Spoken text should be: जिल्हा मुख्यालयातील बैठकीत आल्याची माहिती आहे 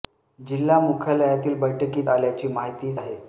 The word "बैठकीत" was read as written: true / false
true